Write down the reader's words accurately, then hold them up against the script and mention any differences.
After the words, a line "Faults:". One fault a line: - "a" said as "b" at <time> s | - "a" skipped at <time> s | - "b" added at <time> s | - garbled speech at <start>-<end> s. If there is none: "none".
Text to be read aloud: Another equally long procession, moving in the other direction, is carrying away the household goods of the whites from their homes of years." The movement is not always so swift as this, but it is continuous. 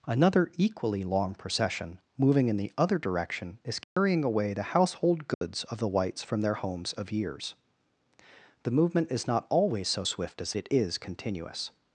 Another equally long procession, moving in the other direction, is carrying away the household goods of the whites from their homes of years." The movement is not always so swift as it is continuous.
Faults:
- "this but" skipped at 10.5 s